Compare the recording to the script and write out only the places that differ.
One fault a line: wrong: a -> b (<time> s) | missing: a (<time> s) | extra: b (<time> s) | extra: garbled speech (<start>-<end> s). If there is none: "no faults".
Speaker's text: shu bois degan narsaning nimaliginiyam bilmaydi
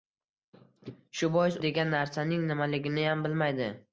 no faults